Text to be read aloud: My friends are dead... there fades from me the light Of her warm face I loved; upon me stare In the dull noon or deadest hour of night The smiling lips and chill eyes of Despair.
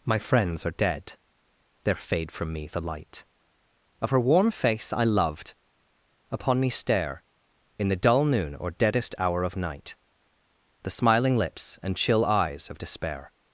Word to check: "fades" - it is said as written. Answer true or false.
false